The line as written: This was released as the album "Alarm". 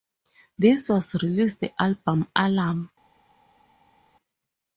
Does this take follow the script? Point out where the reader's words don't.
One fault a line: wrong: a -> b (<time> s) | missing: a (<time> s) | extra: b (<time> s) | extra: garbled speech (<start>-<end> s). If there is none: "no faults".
missing: as (1.6 s)